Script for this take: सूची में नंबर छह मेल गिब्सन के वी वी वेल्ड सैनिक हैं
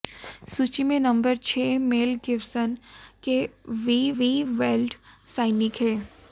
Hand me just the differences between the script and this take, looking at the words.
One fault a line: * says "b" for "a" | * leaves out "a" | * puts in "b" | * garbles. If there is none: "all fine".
all fine